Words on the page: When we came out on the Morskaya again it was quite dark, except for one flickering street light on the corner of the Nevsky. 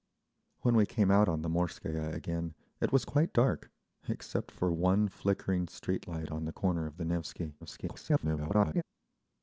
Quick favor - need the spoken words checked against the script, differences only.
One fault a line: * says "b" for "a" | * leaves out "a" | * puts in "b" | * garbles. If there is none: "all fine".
* garbles